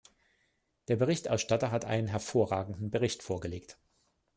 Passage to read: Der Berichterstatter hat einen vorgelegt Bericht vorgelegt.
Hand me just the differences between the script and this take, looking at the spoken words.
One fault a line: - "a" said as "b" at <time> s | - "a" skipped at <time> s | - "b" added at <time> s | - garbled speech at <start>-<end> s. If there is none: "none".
- "vorgelegt" said as "hervorragenden" at 2.1 s